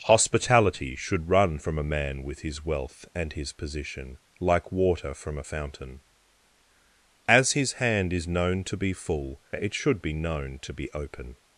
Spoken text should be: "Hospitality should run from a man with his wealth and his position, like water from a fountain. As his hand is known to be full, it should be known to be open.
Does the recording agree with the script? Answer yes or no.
yes